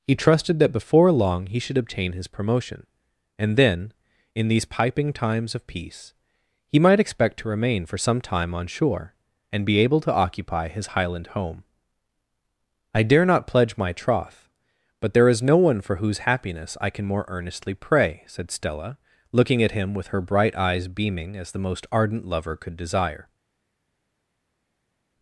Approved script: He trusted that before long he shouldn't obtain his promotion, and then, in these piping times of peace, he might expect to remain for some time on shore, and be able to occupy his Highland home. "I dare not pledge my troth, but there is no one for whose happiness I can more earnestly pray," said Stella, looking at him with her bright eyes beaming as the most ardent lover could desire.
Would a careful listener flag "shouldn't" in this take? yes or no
yes